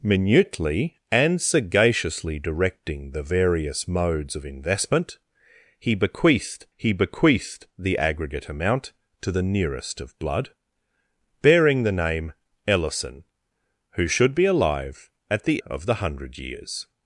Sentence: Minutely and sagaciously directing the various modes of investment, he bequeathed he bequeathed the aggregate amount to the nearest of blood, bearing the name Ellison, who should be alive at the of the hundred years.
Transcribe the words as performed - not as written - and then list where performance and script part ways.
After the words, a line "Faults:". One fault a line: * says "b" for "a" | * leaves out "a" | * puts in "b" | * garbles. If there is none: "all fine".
Minutely and sagaciously directing the various modes of investment, he bequeathed he bequeathed the aggregate amount to the nearest of blood, bearing the name Ellison, who should be alive at the of the hundred years.
Faults:
all fine